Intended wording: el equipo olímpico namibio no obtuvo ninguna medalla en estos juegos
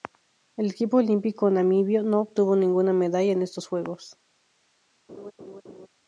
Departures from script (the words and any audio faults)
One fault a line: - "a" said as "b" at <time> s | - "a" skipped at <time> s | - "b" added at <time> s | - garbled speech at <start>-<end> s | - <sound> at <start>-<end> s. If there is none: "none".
- laugh at 5.1-5.9 s